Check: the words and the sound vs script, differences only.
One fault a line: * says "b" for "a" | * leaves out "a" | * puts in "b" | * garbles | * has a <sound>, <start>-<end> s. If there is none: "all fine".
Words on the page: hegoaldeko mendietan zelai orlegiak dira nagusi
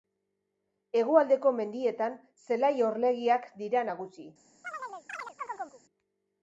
* has a chirp, 4.6-5.8 s